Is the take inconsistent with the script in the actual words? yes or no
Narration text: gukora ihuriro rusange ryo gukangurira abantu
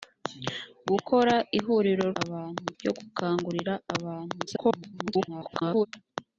yes